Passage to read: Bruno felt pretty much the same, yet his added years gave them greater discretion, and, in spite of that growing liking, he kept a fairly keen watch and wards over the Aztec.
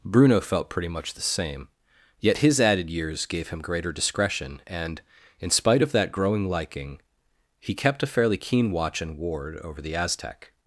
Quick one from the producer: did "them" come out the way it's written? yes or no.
no